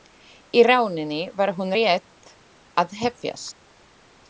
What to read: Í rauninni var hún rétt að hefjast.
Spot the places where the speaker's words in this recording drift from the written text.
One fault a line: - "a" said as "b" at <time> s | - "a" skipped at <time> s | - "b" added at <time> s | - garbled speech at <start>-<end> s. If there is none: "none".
none